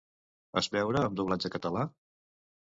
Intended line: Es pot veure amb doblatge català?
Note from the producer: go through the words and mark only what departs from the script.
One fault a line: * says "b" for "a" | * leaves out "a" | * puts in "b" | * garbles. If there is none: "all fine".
* leaves out "pot"